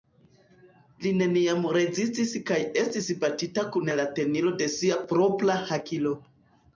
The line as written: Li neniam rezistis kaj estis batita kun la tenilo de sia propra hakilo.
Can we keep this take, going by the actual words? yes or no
yes